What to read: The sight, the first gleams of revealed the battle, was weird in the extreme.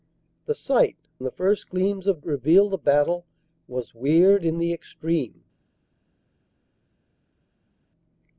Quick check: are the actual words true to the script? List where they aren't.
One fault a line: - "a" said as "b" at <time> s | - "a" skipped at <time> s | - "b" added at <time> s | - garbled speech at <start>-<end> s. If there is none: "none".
none